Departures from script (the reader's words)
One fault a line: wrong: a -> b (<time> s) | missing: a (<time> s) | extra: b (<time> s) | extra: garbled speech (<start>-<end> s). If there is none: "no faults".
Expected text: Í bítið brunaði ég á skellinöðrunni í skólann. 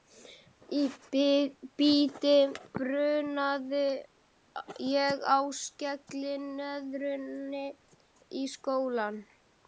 no faults